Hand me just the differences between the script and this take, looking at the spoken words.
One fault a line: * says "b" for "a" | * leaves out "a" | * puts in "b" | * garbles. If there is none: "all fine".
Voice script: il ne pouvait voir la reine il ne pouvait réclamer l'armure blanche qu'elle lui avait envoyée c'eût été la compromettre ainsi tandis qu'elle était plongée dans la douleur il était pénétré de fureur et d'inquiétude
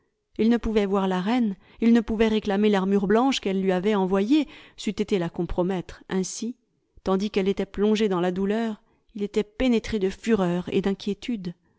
all fine